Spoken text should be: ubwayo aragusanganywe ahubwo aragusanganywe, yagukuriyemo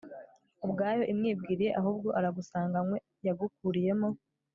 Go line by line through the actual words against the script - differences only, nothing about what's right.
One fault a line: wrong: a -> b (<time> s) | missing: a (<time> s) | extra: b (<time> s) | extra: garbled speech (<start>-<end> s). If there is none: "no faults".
wrong: aragusanganywe -> imwibwiriye (1.1 s)